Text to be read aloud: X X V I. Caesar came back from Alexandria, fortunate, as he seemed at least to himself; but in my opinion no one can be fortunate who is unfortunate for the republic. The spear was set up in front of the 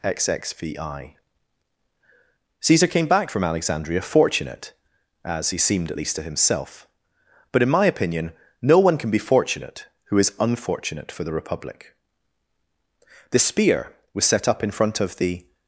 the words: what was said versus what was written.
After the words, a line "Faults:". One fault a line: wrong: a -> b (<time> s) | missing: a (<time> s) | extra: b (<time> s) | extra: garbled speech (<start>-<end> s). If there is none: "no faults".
X X V I. Caesar came back from Alexandria, fortunate, as he seemed at least to himself; but in my opinion no one can be fortunate who is unfortunate for the republic. The spear was set up in front of the
Faults:
no faults